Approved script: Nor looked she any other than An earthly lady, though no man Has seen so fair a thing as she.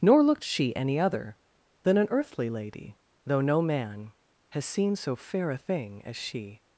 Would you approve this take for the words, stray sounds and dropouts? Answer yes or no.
yes